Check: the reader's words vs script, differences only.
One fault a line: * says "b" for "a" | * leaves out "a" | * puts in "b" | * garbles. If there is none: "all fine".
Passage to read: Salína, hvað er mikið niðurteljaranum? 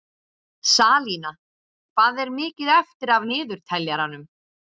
* puts in "eftir af"